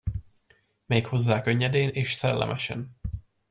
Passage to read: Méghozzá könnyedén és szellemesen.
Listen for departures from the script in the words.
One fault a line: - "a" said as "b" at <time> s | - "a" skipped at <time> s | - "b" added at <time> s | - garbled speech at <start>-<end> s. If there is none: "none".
none